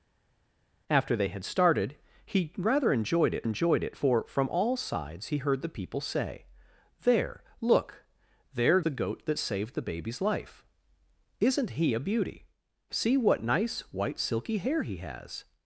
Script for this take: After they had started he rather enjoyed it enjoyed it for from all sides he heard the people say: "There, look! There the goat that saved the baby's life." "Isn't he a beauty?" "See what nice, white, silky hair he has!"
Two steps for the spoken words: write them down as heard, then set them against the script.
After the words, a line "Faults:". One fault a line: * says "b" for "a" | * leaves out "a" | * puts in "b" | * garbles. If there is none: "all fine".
After they had started he rather enjoyed it enjoyed it for from all sides he heard the people say: "There, look! There the goat that saved the baby's life." "Isn't he a beauty?" "See what nice, white, silky hair he has!"
Faults:
all fine